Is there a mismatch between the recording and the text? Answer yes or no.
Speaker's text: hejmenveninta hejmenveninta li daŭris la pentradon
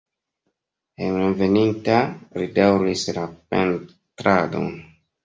yes